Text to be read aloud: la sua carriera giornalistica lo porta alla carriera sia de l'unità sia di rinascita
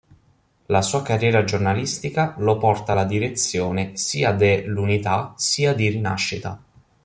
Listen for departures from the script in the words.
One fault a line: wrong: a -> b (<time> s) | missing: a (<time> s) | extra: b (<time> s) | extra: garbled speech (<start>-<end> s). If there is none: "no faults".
wrong: carriera -> direzione (3.0 s)